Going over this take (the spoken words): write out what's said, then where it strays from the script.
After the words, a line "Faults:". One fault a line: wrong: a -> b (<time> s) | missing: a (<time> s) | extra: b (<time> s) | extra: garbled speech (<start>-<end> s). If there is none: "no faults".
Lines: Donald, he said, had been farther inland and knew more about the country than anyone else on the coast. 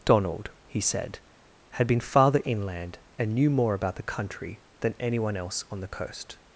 Donald, he said, had been farther inland and knew more about the country than anyone else on the coast.
Faults:
no faults